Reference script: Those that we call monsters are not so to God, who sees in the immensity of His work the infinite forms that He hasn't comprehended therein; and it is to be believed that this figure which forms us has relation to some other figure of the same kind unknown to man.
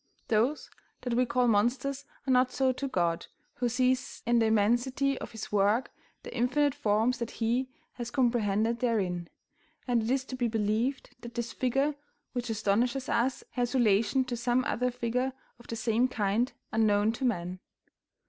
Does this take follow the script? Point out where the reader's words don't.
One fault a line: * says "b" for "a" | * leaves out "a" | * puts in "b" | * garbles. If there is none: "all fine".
* says "has" for "hasn't"
* says "astonishes" for "forms"